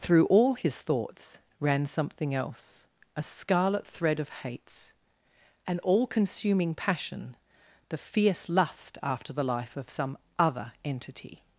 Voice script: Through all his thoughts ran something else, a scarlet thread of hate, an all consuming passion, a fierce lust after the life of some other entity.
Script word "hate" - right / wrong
wrong